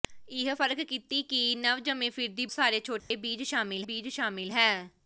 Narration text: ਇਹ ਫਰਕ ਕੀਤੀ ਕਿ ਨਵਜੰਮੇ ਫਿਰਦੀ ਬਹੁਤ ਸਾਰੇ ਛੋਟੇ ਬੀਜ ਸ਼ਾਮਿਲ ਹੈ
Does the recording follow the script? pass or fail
fail